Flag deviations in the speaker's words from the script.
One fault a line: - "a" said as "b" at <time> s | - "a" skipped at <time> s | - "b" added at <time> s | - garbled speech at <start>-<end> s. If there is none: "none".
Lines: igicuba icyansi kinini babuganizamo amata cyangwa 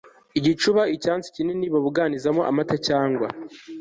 none